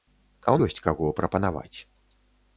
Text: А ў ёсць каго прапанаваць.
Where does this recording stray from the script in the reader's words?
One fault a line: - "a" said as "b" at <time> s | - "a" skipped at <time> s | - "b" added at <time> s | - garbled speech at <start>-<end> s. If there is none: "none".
none